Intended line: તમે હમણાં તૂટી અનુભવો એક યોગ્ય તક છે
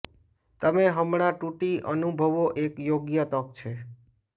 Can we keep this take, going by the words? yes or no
yes